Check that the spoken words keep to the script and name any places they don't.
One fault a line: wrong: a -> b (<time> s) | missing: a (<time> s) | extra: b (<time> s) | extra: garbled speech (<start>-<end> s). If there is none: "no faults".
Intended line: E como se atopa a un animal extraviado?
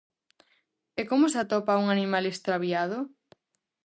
no faults